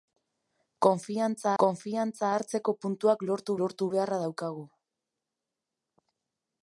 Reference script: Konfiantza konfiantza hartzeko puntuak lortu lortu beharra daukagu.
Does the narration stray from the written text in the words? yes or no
no